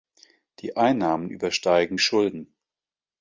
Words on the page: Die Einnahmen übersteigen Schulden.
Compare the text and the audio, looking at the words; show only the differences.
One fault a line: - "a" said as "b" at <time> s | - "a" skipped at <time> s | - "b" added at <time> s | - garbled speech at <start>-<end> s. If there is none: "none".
none